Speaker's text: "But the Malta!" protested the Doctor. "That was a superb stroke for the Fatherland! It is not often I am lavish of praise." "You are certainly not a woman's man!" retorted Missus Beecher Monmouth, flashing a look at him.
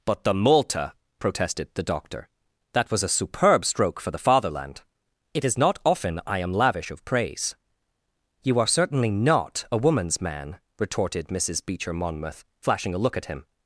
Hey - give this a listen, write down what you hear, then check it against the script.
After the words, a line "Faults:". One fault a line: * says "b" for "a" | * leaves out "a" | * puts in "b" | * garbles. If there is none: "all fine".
"But the Malta!" protested the Doctor. "That was a superb stroke for the Fatherland! It is not often I am lavish of praise." "You are certainly not a woman's man!" retorted Missus Beecher Monmouth, flashing a look at him.
Faults:
all fine